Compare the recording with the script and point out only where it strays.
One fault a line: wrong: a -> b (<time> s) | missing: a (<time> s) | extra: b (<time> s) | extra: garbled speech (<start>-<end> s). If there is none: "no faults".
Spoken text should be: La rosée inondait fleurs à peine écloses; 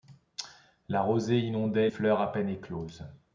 no faults